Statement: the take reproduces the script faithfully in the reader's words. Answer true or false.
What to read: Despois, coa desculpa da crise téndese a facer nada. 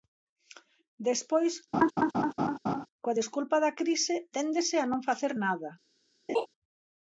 false